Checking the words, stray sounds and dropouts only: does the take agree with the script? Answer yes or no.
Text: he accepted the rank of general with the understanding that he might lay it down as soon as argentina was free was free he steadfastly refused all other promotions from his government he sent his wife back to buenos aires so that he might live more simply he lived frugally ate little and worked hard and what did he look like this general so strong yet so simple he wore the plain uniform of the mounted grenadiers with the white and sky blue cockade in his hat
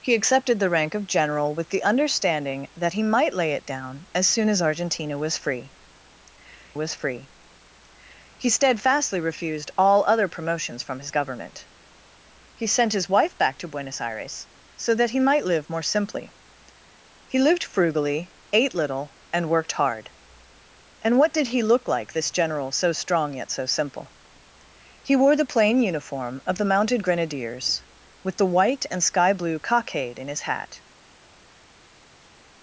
yes